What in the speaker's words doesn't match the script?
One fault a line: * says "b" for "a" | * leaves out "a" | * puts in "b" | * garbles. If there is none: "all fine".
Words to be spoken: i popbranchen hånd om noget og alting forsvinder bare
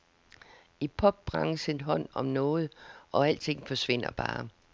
all fine